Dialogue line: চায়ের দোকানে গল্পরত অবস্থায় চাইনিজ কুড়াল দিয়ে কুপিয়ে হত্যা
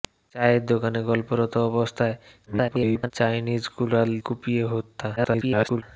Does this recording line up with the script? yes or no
no